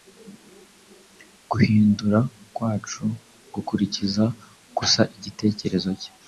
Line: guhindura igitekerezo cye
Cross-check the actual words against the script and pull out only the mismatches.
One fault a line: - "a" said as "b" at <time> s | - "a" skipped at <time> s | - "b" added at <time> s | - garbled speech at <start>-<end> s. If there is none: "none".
- "kwacu gukurikiza gusa" added at 2.5 s